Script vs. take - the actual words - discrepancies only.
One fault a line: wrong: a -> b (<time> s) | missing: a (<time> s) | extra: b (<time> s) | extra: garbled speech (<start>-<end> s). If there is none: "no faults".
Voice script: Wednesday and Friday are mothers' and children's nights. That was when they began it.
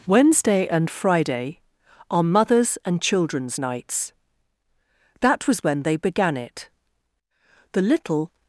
extra: The little (7.7 s)